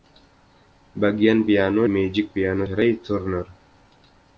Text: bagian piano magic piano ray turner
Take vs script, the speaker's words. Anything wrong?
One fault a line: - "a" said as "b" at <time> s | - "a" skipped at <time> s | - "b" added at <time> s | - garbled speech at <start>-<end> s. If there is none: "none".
none